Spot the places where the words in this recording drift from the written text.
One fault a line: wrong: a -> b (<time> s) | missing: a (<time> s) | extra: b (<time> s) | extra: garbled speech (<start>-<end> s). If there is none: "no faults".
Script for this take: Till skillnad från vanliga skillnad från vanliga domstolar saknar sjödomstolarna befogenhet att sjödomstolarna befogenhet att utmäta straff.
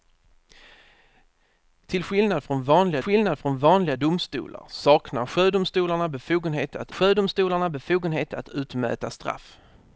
no faults